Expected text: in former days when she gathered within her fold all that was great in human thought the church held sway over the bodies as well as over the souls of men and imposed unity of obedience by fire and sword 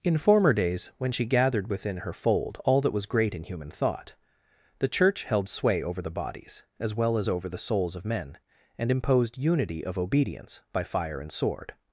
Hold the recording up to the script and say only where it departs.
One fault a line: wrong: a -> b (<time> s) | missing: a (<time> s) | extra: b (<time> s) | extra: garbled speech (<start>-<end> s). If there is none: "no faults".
no faults